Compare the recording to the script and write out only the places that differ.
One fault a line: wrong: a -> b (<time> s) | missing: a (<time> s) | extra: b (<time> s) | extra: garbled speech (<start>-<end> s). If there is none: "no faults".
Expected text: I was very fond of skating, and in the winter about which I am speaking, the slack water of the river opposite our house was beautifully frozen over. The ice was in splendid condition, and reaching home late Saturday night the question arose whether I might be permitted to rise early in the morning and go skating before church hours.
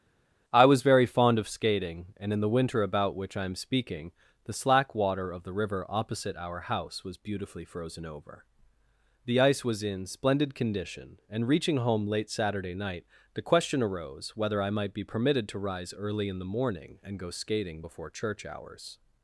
no faults